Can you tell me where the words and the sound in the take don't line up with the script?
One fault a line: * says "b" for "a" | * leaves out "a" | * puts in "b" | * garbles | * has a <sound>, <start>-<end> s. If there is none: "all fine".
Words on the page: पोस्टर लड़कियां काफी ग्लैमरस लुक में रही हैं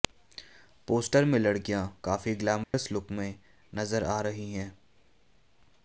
* puts in "में"
* has a dropout, 2.6-2.7 s
* puts in "नजर आ"